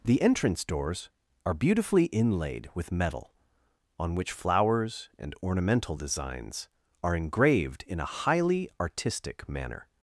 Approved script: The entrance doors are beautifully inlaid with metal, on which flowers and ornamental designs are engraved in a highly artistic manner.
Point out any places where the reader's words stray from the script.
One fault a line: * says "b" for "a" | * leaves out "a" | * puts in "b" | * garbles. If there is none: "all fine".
all fine